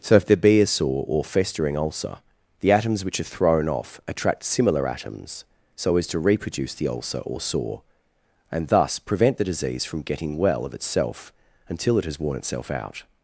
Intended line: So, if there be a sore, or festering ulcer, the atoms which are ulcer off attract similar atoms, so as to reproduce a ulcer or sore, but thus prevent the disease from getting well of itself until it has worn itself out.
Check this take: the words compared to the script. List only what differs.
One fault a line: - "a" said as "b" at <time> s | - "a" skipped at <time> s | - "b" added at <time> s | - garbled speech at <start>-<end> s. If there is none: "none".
- "ulcer" said as "thrown" at 3.4 s
- "a" said as "the" at 6.7 s
- "but" said as "and" at 8.5 s